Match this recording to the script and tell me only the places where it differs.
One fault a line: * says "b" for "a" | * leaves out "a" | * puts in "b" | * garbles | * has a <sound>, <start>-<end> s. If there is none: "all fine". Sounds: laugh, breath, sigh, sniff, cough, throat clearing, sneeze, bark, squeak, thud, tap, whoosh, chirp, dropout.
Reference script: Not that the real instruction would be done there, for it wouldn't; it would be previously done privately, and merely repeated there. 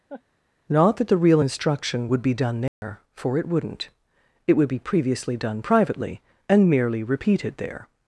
* has a laugh, 0.1-0.2 s
* has a dropout, 2.7-2.8 s